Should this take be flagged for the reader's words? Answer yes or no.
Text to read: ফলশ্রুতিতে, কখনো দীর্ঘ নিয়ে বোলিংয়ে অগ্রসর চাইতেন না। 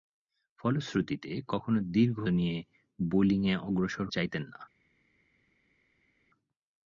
no